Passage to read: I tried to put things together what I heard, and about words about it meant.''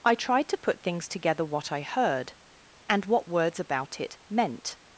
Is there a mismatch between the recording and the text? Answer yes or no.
yes